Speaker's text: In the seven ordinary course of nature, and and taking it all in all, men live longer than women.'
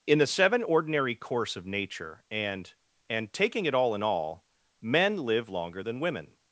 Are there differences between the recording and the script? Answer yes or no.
no